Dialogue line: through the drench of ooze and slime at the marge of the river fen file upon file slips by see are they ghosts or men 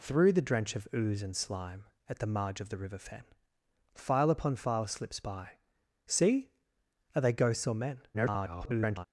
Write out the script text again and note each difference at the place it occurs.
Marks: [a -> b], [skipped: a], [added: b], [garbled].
through the drench of ooze and slime at the marge of the river fen file upon file slips by see are they ghosts or men [garbled]